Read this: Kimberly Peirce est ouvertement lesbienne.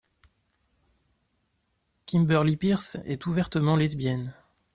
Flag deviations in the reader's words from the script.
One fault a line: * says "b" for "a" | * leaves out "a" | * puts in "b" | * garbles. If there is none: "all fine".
all fine